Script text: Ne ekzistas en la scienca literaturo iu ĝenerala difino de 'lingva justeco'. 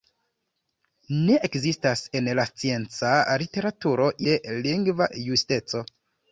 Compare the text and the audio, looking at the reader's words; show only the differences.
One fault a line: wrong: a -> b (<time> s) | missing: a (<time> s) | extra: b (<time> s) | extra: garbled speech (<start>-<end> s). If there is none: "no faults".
missing: iu ĝenerala difino (4.1 s)